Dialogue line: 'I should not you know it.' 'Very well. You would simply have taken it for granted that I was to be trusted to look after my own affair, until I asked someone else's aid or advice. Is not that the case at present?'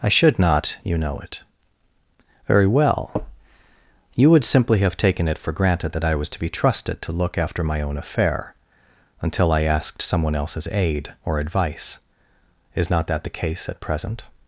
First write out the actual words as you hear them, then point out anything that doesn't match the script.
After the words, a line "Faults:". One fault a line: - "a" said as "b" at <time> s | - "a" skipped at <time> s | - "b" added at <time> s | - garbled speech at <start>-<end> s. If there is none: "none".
'I should not you know it.' 'Very well. You would simply have taken it for granted that I was to be trusted to look after my own affair, until I asked someone else's aid or advice. Is not that the case at present?'
Faults:
none